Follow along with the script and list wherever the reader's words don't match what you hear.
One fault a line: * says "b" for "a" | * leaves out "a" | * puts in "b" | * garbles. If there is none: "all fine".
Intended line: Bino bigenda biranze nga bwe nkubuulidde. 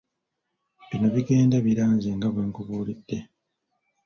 all fine